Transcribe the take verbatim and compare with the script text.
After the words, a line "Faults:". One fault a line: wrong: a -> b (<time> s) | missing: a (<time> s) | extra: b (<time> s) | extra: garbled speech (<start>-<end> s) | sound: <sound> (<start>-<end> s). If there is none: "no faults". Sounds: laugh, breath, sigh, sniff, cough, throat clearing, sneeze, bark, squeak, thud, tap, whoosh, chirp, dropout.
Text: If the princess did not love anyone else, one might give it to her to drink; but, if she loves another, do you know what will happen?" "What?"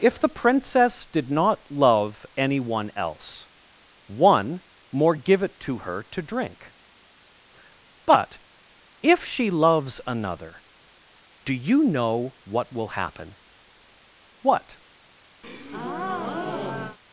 If the princess did not love anyone else, one more give it to her to drink; but, if she loves another, do you know what will happen?" "What?"
Faults:
wrong: might -> more (4.9 s)
sound: breath (15.4-17.0 s)